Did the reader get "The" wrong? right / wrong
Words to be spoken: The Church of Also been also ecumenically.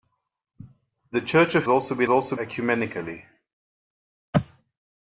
right